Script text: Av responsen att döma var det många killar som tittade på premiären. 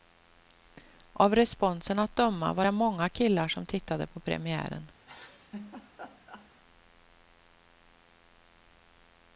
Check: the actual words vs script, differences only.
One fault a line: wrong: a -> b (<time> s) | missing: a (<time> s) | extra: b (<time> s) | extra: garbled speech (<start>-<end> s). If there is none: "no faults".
no faults